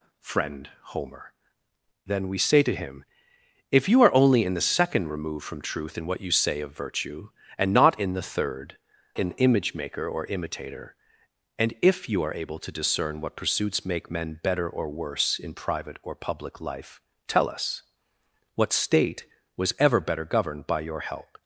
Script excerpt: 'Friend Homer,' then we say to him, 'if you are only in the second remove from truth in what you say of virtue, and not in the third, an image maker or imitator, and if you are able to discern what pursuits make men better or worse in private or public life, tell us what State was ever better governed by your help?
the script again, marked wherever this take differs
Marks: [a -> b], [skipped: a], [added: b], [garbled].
'Friend Homer,' then we say to him, 'if you are only in the second remove from truth in what you say of virtue, and not in the third, an image maker or imitator, and if you are able to discern what pursuits make men better or worse in private or public life, tell us what State was ever better governed by your help?